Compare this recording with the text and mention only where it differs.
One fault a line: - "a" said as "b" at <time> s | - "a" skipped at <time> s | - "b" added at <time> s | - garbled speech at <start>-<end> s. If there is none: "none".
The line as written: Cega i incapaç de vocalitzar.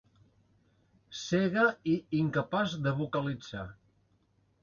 none